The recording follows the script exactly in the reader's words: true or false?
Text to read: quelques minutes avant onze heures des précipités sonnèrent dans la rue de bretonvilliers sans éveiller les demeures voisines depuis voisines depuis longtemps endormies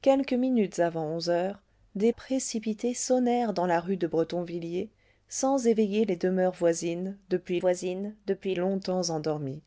true